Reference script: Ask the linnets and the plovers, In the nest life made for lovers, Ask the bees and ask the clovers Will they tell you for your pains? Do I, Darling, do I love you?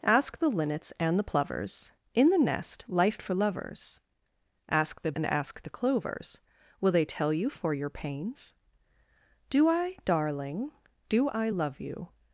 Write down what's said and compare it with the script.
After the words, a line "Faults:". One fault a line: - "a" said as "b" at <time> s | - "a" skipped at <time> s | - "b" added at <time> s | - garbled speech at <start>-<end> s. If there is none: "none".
Ask the linnets and the plovers, In the nest life for lovers, Ask the and ask the clovers Will they tell you for your pains? Do I, Darling, do I love you?
Faults:
- "made" skipped at 3.2 s
- "bees" skipped at 5.1 s